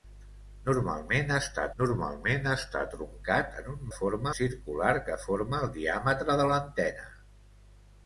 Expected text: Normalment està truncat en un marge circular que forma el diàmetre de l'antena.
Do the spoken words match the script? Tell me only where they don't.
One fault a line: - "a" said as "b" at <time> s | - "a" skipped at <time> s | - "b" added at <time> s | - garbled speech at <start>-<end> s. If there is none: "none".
- "normalment està" added at 1.8 s
- "marge" said as "forma" at 4.0 s